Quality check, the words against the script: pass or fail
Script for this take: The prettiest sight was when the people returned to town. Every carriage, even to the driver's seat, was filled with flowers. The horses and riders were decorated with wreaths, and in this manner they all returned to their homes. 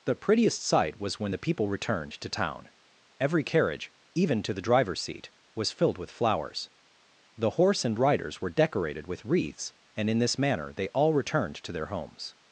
fail